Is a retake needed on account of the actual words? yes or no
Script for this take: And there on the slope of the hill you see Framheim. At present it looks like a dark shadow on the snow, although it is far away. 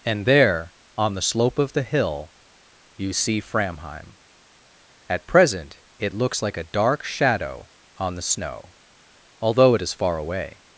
no